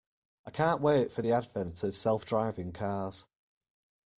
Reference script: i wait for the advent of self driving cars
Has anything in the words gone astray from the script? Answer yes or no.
yes